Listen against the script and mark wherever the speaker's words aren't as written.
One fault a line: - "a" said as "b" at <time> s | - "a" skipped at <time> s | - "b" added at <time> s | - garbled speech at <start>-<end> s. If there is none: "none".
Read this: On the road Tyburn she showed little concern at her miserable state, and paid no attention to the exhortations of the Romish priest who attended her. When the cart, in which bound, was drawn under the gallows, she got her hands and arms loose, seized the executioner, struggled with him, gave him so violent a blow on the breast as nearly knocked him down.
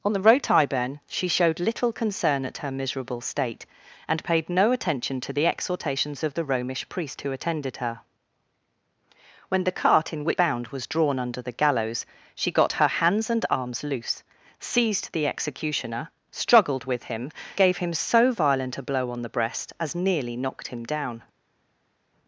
none